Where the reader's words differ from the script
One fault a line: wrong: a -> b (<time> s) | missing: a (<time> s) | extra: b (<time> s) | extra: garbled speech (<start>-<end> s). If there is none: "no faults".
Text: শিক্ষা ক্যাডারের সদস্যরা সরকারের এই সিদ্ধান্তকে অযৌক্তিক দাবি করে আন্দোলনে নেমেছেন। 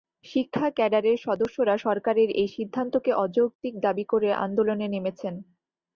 no faults